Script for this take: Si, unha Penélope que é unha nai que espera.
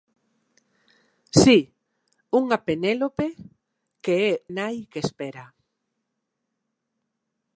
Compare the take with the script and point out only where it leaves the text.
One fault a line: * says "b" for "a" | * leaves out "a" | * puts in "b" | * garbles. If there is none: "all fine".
* leaves out "unha"